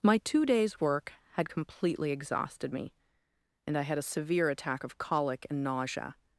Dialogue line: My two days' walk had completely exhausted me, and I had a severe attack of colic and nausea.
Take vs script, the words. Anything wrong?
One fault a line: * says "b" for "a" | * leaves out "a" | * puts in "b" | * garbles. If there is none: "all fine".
* says "work" for "walk"